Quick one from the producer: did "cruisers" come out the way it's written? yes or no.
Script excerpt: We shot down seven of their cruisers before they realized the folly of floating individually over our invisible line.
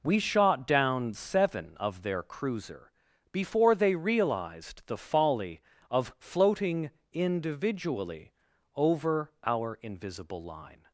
no